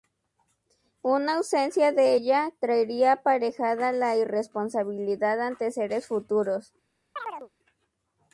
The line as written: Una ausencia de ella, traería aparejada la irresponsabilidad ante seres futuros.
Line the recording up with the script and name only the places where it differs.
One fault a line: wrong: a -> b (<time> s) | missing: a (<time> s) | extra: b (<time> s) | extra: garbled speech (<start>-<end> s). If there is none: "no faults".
no faults